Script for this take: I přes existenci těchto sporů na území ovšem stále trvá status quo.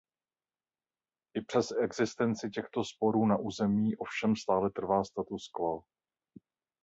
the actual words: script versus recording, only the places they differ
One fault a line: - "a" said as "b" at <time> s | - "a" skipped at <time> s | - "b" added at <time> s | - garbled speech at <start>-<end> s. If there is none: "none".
none